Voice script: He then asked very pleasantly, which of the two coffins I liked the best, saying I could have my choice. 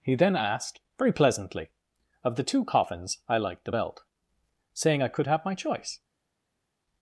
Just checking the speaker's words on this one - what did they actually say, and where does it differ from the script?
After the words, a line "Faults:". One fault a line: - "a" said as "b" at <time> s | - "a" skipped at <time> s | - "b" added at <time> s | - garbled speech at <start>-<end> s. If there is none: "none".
He then asked very pleasantly, of the two coffins I liked the belt, saying I could have my choice.
Faults:
- "which" skipped at 1.7 s
- "best" said as "belt" at 3.7 s